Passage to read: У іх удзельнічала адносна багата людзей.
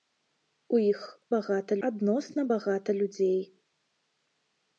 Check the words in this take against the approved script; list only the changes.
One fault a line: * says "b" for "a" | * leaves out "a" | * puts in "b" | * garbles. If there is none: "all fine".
* says "багата" for "удзельнічала"